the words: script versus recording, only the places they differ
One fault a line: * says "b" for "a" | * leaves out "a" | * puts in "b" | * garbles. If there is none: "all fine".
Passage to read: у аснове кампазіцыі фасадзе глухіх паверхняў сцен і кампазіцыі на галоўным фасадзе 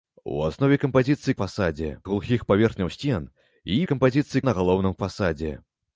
all fine